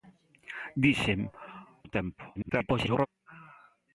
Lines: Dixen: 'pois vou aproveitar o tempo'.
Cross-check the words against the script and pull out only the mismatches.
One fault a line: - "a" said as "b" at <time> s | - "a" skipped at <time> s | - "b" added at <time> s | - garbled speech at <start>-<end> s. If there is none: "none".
- "pois vou aproveitar" skipped at 1.2 s
- garbled speech at 2.4-3.1 s